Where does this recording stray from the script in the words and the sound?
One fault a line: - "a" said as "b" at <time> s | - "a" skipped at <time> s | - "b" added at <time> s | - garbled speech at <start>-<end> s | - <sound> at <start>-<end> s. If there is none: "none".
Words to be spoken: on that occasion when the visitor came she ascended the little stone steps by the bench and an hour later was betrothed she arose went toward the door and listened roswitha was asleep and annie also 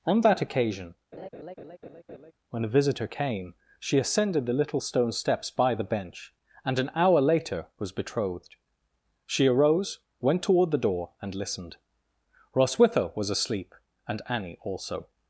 - laugh at 1.1-2.3 s